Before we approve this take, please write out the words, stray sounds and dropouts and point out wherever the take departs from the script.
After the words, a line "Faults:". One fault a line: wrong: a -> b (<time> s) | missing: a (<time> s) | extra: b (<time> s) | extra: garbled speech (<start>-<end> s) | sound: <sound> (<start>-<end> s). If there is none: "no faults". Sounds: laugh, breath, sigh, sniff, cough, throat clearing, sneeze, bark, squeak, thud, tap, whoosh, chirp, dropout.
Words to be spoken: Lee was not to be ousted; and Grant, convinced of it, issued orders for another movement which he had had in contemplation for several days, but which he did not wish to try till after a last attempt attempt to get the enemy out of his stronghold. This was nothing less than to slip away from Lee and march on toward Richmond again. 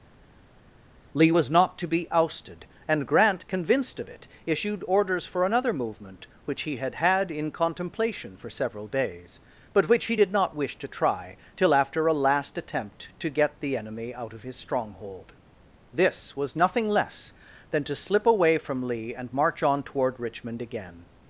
Lee was not to be ousted; and Grant, convinced of it, issued orders for another movement which he had had in contemplation for several days, but which he did not wish to try till after a last attempt to get the enemy out of his stronghold. This was nothing less than to slip away from Lee and march on toward Richmond again.
Faults:
missing: attempt (13.1 s)